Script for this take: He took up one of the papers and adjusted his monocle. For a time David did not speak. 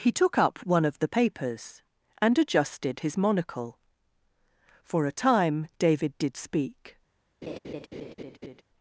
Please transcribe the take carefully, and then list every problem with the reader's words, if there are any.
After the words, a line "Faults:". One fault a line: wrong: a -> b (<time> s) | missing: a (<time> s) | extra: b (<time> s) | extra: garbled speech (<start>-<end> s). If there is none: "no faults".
He took up one of the papers and adjusted his monocle. For a time David did speak.
Faults:
missing: not (6.4 s)